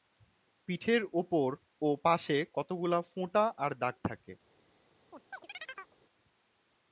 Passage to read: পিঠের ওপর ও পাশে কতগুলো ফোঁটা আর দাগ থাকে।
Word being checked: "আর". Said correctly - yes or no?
yes